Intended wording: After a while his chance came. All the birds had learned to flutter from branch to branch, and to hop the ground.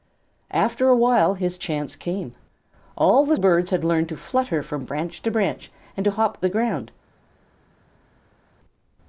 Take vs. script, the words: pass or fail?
pass